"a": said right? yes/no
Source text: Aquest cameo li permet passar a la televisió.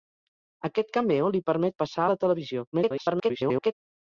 no